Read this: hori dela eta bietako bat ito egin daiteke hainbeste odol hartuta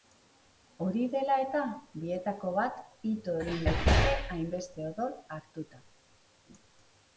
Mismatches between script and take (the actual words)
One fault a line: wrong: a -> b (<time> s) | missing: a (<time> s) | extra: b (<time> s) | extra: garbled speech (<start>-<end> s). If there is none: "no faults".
no faults